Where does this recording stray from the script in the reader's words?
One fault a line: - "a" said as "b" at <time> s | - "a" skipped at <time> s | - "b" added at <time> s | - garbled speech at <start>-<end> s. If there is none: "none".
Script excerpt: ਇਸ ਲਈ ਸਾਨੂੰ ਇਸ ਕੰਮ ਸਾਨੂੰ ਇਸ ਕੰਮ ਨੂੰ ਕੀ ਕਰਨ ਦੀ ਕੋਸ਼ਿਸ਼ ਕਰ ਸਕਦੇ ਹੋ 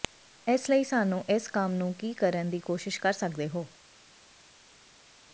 - "ਸਾਨੂੰ ਇਸ ਕੰਮ" skipped at 1.7 s